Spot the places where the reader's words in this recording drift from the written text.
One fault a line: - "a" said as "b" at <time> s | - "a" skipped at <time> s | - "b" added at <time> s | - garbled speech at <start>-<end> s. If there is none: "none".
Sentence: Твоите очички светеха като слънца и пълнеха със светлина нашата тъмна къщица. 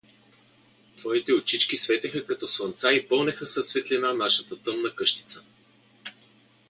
none